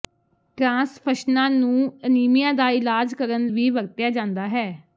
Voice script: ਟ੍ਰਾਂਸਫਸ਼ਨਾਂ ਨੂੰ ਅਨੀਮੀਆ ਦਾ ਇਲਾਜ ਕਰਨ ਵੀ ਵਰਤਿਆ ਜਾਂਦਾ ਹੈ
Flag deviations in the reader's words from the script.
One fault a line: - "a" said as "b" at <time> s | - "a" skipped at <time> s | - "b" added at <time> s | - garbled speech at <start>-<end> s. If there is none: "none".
none